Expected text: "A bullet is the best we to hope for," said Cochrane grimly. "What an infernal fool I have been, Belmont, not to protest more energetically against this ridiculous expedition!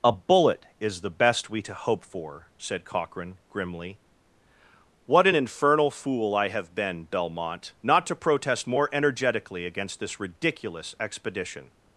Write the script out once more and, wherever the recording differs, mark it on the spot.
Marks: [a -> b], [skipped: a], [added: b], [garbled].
"A bullet is the best we to hope for," said Cochrane grimly. "What an infernal fool I have been, Belmont, not to protest more energetically against this ridiculous expedition!